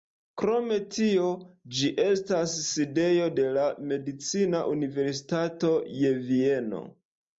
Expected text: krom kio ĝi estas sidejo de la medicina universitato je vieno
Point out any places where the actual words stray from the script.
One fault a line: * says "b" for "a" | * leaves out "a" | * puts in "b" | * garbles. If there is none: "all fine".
* says "tio" for "kio"